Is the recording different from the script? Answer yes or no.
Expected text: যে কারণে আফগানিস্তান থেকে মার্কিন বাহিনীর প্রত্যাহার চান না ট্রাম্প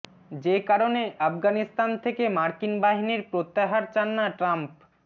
no